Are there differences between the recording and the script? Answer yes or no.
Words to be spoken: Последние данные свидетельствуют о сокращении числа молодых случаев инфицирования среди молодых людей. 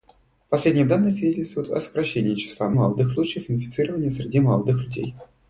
no